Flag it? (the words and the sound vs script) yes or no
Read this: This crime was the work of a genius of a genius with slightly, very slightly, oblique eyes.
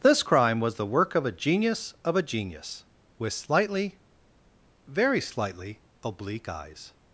no